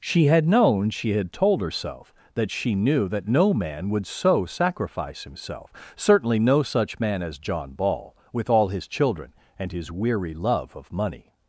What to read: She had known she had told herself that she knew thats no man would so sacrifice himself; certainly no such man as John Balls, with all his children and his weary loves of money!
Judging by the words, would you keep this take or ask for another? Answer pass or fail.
fail